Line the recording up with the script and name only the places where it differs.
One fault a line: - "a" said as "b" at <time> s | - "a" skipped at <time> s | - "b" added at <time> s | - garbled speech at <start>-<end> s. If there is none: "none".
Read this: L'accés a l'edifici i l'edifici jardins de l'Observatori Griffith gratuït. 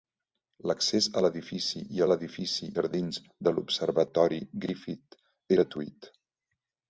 none